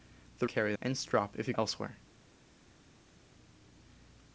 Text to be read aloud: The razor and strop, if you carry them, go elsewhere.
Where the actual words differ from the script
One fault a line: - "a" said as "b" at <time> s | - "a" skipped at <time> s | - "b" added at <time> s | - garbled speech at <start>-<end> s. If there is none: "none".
- "razor" said as "carry" at 0.4 s
- "carry them go" skipped at 1.5 s